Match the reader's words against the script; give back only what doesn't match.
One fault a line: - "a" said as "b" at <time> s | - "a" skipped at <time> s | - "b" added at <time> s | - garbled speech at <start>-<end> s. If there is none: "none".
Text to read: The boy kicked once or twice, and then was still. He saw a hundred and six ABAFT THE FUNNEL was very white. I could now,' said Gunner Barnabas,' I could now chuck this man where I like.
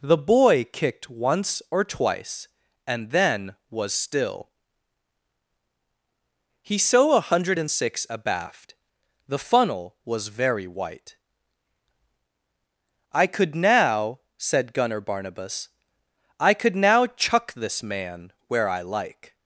none